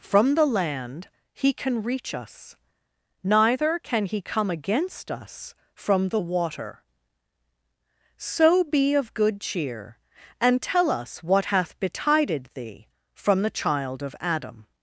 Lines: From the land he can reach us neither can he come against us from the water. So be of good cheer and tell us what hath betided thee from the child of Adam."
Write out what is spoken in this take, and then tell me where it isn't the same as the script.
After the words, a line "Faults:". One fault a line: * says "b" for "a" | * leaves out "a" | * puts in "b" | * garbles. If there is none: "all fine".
From the land he can reach us neither can he come against us from the water. So be of good cheer and tell us what hath betided thee from the child of Adam."
Faults:
all fine